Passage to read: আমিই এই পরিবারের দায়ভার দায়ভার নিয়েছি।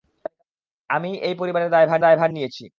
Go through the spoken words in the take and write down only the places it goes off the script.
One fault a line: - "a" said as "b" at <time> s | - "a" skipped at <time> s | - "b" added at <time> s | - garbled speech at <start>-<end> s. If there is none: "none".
none